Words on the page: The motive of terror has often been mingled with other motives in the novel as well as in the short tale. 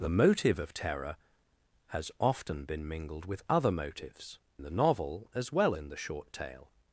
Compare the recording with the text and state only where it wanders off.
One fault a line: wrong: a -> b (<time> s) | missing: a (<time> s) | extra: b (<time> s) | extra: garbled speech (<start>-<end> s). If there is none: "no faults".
missing: in (4.4 s)
missing: as (5.7 s)